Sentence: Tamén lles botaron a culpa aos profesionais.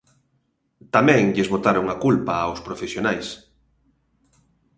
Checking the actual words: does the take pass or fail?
pass